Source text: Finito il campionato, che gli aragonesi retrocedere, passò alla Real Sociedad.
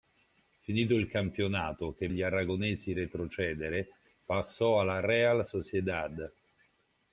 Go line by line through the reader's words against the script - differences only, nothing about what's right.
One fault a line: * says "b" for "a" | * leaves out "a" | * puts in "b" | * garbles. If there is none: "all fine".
all fine